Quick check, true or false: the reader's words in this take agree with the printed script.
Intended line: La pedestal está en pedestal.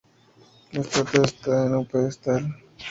false